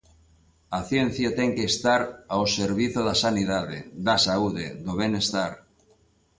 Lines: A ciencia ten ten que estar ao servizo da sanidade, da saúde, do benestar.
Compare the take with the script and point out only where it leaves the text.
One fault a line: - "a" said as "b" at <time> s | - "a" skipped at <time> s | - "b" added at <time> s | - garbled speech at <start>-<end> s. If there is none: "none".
- "ten" skipped at 1.5 s